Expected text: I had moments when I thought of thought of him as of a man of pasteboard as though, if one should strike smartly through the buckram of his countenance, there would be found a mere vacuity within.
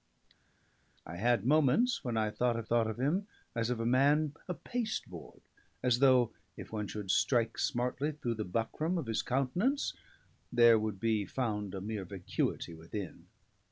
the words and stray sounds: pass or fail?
pass